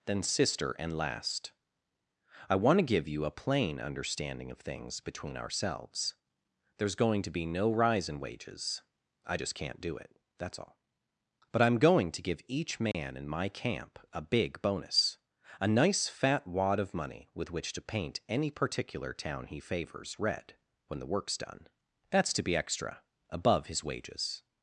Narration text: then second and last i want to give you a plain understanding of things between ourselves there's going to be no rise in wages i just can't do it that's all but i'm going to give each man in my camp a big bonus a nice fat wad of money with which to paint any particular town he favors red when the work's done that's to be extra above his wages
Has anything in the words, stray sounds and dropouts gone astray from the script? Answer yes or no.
yes